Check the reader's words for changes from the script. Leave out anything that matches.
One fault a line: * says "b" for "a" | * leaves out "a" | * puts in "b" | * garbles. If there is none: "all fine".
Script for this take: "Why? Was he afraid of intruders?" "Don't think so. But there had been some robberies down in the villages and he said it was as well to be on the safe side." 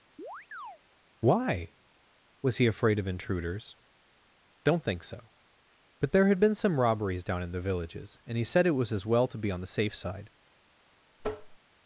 all fine